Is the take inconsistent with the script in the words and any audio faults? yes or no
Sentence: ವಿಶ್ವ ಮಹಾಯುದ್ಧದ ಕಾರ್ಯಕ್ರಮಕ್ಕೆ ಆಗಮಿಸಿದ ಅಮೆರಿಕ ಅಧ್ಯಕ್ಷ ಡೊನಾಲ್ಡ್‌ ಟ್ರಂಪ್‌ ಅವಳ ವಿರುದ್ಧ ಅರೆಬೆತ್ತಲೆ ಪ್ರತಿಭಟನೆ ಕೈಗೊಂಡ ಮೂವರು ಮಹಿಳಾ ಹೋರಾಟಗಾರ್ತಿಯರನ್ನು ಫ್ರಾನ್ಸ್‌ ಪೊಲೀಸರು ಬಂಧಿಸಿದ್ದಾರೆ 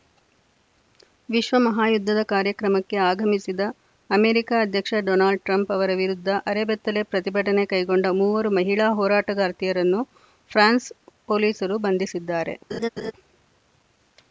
yes